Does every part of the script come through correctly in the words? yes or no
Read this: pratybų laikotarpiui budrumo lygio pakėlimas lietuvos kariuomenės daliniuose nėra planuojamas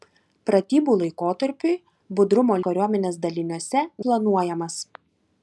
no